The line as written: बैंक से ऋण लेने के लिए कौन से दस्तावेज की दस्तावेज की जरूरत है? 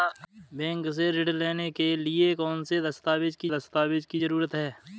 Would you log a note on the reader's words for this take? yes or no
no